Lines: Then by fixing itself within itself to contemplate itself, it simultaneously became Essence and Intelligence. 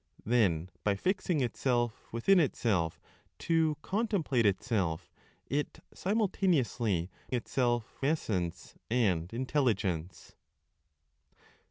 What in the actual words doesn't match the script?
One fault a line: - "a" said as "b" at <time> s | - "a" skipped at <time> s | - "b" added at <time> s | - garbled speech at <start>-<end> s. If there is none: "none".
- "became" said as "itself" at 7.3 s